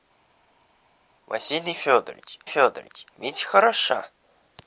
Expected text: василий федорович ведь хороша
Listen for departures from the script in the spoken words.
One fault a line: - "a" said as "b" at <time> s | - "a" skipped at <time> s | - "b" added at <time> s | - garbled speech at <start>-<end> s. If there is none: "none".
- "федорович" added at 2.4 s